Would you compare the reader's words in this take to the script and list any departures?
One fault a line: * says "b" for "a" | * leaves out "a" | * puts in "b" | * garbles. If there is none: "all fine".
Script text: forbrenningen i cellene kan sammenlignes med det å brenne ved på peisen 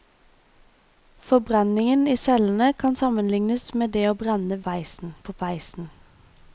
* says "peisen" for "ved"